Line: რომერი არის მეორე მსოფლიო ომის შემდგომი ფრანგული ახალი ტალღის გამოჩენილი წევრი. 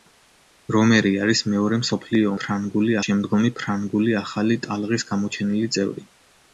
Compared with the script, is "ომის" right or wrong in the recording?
wrong